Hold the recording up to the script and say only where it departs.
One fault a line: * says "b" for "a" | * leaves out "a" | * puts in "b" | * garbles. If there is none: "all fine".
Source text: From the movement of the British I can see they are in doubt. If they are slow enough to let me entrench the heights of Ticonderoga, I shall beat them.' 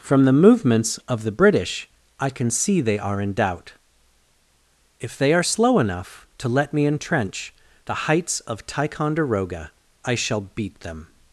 * says "movements" for "movement"